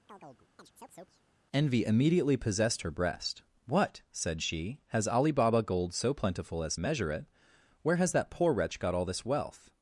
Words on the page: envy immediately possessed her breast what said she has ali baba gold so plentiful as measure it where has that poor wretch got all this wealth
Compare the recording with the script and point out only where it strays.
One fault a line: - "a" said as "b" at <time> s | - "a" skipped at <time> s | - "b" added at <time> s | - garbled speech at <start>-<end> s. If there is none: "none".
none